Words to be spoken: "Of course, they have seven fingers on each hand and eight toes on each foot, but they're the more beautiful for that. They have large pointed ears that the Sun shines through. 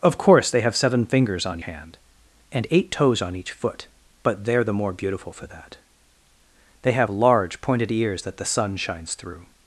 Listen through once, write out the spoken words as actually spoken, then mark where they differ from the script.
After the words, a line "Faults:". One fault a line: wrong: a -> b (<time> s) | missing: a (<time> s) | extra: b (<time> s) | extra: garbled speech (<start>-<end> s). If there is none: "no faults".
"Of course, they have seven fingers on hand and eight toes on each foot, but they're the more beautiful for that. They have large pointed ears that the Sun shines through.
Faults:
missing: each (1.6 s)